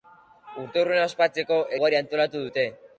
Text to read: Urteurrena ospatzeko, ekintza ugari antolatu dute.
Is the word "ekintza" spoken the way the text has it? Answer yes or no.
no